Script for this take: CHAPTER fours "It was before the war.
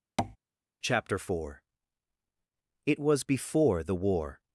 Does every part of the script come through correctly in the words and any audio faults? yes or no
no